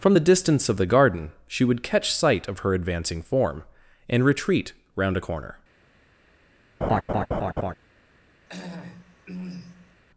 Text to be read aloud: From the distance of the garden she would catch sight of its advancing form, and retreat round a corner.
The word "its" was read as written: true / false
false